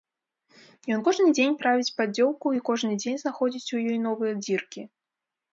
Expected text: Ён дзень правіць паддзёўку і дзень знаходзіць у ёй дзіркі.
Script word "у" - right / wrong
right